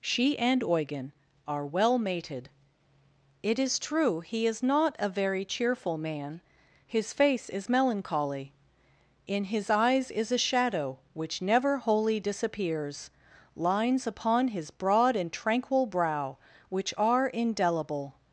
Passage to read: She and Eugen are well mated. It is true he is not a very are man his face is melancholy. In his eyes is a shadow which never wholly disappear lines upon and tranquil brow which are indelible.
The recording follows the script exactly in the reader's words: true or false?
false